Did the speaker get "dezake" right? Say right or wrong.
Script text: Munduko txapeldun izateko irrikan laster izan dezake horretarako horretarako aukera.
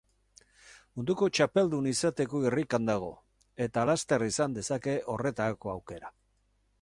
right